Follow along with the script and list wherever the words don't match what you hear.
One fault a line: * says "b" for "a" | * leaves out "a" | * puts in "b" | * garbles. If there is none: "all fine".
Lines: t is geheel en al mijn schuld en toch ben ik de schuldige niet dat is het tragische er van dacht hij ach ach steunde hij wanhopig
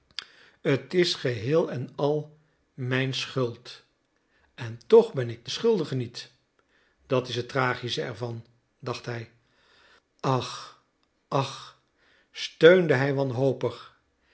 all fine